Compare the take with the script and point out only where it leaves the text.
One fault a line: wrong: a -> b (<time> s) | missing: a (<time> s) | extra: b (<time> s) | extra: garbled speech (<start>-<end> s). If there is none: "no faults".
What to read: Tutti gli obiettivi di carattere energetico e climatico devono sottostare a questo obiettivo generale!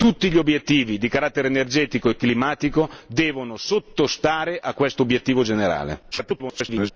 extra: garbled speech (6.1-6.9 s)